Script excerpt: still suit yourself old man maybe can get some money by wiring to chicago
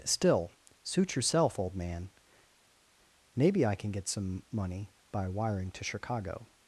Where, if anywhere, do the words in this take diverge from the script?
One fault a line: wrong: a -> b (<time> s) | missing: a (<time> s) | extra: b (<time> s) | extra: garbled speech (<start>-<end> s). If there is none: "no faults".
extra: i (3.7 s)